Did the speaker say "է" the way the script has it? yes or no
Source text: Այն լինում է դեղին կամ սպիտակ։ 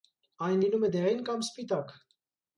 yes